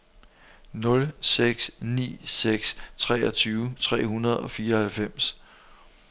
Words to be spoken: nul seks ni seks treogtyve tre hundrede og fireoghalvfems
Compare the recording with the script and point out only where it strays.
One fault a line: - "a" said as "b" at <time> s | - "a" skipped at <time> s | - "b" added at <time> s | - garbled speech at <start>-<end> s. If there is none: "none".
none